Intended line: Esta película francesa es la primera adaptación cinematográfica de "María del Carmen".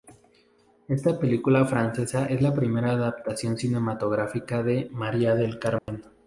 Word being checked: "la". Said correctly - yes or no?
yes